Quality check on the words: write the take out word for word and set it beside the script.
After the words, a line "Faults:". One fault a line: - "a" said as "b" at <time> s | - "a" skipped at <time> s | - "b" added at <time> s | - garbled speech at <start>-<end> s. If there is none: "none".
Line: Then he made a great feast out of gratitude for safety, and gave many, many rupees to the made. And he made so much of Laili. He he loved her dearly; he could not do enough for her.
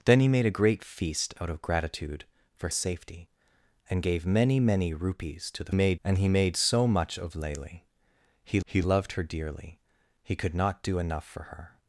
Then he made a great feast out of gratitude for safety, and gave many, many rupees to the made. And he made so much of Laili. He he loved her dearly; he could not do enough for her.
Faults:
none